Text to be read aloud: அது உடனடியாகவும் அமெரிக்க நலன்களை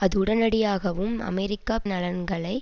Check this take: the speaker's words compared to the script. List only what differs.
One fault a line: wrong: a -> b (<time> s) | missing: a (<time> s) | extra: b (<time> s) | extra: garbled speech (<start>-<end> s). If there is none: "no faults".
no faults